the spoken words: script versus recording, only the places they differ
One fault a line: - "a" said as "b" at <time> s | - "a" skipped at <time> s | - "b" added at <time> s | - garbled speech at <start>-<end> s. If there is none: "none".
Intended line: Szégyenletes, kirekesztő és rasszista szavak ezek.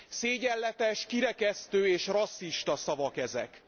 none